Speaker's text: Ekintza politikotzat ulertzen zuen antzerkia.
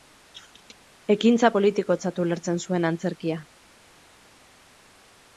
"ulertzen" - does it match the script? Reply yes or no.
yes